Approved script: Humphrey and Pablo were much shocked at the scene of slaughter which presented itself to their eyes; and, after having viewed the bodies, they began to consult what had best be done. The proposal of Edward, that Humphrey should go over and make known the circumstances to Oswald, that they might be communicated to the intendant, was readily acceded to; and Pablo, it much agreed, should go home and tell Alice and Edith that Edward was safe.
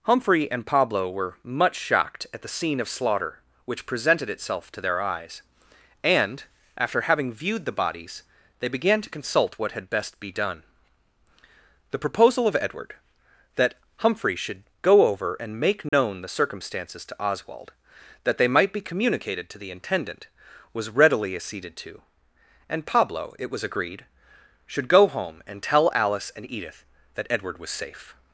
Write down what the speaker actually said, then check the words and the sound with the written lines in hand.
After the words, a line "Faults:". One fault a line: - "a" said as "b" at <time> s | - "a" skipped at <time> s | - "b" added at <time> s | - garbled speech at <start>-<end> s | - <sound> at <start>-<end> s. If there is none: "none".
Humphrey and Pablo were much shocked at the scene of slaughter which presented itself to their eyes; and, after having viewed the bodies, they began to consult what had best be done. The proposal of Edward, that Humphrey should go over and make known the circumstances to Oswald, that they might be communicated to the intendant, was readily acceded to; and Pablo, it was agreed, should go home and tell Alice and Edith that Edward was safe.
Faults:
- dropout at 15.9-15.9 s
- "much" said as "was" at 23.5 s